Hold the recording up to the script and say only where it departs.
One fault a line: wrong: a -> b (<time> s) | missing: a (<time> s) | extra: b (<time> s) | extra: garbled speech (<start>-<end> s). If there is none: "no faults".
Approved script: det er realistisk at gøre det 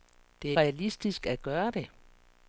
no faults